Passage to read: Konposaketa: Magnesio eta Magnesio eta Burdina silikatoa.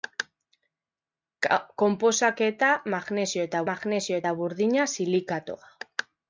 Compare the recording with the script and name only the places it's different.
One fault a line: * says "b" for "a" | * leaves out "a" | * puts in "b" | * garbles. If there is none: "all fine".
all fine